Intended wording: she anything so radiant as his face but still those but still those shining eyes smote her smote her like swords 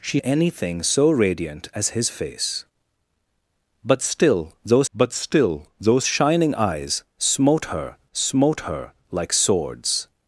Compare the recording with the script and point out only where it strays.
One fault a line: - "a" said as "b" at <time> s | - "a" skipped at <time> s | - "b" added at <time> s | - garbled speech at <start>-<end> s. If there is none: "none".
none